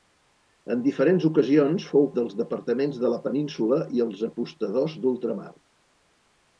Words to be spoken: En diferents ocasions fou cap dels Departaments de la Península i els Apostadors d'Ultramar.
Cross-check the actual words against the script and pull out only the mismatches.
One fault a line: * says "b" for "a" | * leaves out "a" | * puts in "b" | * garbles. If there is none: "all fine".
* leaves out "cap"